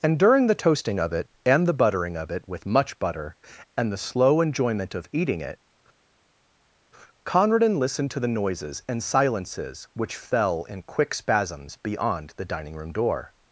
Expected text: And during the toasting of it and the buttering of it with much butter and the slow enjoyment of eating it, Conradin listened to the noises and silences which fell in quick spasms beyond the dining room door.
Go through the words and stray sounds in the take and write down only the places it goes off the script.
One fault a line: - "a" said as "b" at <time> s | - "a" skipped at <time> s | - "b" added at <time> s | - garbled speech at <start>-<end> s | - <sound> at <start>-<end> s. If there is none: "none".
none